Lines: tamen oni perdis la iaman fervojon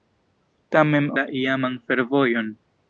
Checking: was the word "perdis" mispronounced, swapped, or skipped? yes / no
yes